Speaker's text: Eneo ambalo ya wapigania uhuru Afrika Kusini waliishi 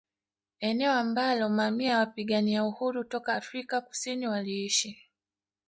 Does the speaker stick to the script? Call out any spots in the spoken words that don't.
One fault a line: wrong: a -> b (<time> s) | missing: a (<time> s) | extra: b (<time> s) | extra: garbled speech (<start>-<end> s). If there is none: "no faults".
extra: mamia (1.5 s)
extra: toka (3.0 s)